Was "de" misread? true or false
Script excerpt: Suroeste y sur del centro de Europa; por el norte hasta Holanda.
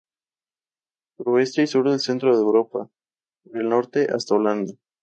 false